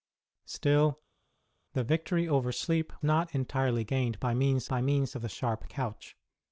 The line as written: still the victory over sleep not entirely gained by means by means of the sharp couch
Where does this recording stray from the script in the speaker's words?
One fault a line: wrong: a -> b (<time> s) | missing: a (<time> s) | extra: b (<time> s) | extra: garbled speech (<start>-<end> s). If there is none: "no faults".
no faults